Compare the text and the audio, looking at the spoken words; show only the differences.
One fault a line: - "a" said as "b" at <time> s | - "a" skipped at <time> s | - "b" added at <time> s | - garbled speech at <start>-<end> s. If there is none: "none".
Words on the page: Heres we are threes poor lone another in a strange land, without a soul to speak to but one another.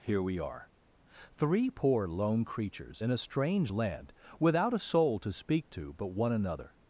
- "Heres" said as "Here" at 0.0 s
- "threes" said as "three" at 1.4 s
- "another" said as "creatures" at 2.4 s